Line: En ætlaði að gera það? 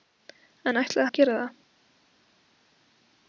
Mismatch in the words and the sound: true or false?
false